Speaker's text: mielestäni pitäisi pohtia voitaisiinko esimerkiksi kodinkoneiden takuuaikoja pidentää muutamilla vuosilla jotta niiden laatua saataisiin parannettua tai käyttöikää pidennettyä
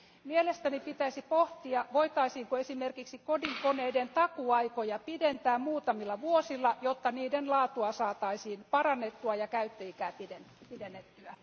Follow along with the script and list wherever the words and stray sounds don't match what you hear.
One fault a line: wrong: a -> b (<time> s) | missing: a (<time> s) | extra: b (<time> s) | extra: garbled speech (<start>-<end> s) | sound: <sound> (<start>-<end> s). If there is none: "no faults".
wrong: tai -> ja (9.3 s)